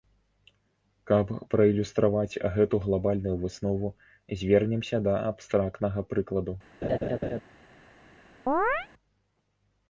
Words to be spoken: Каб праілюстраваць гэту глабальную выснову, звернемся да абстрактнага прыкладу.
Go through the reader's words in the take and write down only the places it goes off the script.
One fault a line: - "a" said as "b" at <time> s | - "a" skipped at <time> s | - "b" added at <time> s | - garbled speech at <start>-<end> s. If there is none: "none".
none